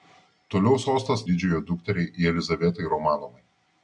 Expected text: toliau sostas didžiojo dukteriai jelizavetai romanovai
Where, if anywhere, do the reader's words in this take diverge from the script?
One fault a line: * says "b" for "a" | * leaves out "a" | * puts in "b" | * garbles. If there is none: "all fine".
all fine